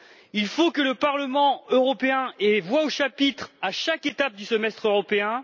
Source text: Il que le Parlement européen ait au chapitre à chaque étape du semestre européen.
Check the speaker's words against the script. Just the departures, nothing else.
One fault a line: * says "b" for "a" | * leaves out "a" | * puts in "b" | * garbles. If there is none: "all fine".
* puts in "faut"
* puts in "voix"